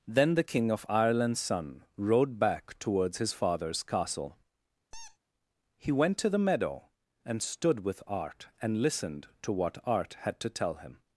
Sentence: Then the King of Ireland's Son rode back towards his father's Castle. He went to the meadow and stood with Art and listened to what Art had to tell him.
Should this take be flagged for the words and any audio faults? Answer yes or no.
yes